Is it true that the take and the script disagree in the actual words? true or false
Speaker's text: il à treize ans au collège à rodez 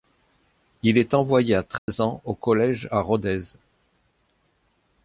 true